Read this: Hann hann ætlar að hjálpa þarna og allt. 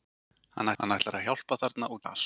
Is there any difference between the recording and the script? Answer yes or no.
no